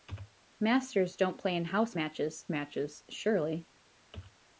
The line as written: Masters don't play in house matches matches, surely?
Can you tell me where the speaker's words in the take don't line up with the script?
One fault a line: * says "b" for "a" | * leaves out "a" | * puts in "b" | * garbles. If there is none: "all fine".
all fine